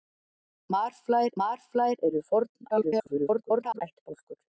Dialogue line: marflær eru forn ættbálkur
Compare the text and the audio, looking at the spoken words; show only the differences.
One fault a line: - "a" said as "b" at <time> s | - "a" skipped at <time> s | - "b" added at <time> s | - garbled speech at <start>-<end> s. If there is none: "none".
- "marflær" added at 1.4 s
- garbled speech at 2.7-3.8 s